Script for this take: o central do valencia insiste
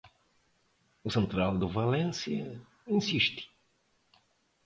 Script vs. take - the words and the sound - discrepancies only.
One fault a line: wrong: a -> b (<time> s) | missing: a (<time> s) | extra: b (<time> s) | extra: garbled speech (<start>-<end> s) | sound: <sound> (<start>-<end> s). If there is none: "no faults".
no faults